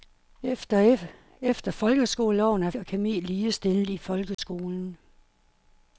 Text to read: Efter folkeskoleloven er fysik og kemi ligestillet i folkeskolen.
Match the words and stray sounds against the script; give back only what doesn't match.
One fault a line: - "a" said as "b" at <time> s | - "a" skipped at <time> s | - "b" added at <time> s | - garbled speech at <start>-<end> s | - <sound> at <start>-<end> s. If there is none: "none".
- "fysik" skipped at 2.7 s
- dropout at 4.3-4.4 s